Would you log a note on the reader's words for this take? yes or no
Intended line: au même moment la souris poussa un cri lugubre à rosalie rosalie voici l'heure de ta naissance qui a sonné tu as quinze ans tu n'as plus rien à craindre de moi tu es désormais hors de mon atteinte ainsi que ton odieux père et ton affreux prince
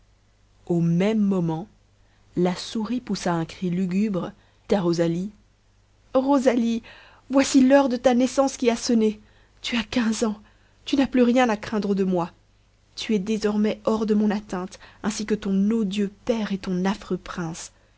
no